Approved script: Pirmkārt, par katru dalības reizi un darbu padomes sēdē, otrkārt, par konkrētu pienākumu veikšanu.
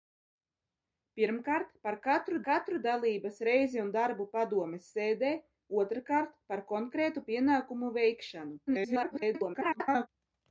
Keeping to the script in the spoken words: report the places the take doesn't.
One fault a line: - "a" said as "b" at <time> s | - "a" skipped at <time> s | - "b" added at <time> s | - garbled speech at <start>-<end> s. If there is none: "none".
- "katru" added at 2.5 s
- garbled speech at 8.7-10.1 s